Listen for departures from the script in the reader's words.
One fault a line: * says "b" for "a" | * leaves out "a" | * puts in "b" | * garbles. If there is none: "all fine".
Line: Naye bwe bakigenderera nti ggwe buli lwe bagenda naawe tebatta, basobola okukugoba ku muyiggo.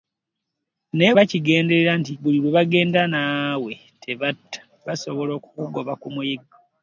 * leaves out "bwe"
* leaves out "ggwe"